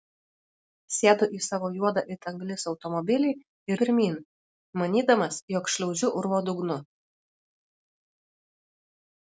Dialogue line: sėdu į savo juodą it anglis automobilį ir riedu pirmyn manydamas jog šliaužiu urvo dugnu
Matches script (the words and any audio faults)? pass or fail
fail